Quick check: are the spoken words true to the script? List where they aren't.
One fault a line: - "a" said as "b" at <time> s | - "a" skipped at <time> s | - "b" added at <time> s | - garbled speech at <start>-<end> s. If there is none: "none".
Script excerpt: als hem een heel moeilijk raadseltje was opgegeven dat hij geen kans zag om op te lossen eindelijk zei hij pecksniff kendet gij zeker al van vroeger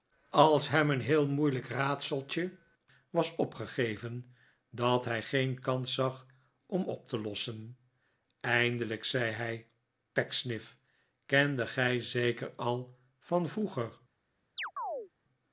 none